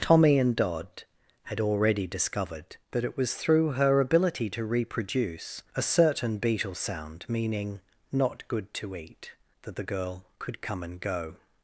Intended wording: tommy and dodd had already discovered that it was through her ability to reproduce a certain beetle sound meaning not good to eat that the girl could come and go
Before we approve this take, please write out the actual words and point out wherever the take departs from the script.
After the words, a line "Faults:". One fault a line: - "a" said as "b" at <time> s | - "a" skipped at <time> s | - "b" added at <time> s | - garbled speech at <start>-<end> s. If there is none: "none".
tommy and dodd had already discovered that it was through her ability to reproduce a certain beetle sound meaning not good to eat that the girl could come and go
Faults:
none